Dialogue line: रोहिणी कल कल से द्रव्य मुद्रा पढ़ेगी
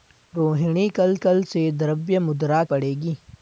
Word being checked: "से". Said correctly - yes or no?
yes